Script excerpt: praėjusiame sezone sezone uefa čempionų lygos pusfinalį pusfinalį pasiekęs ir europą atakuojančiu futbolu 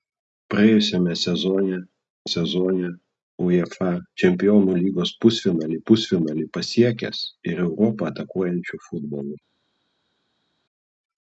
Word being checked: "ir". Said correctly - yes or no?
yes